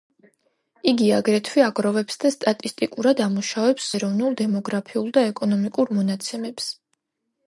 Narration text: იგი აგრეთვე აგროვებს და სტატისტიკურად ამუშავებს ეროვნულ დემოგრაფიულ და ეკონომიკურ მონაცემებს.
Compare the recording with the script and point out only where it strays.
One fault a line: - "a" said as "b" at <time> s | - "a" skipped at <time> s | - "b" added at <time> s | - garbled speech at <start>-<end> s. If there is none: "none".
none